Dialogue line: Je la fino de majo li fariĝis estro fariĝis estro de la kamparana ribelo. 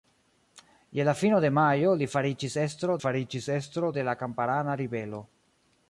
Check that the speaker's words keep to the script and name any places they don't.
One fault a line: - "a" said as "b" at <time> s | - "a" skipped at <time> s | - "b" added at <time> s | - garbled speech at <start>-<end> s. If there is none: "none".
none